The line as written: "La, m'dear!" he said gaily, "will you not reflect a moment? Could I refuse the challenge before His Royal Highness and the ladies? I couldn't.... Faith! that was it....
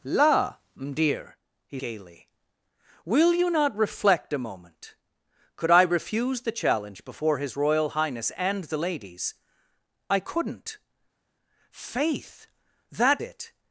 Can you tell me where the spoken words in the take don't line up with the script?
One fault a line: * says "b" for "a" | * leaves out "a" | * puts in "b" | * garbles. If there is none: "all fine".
* leaves out "said"
* leaves out "was"